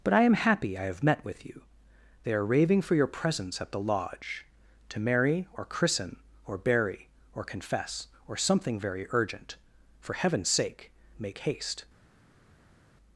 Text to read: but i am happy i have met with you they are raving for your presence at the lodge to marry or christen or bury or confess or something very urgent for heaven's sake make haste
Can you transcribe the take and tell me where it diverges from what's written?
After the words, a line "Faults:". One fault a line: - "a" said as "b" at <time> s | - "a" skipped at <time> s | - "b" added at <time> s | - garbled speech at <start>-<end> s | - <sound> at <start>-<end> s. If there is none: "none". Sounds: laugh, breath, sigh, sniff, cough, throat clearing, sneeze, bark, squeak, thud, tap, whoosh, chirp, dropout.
but i am happy i have met with you they are raving for your presence at the lodge to marry or christen or bury or confess or something very urgent for heaven's sake make haste
Faults:
none